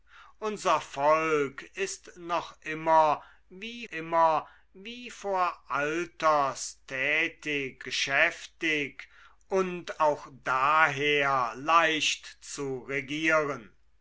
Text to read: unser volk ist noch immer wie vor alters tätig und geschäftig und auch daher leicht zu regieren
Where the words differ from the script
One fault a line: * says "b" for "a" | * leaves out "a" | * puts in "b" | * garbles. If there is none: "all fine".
* puts in "immer wie"
* leaves out "und"